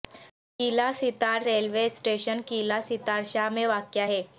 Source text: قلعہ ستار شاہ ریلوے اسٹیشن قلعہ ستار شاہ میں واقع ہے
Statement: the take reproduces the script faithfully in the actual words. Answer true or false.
false